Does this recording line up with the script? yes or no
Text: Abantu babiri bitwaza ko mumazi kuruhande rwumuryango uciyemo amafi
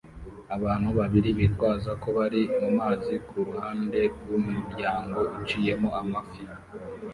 no